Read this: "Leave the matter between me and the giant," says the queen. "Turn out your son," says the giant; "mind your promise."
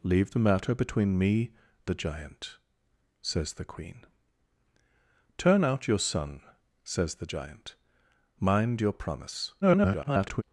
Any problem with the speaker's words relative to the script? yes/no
yes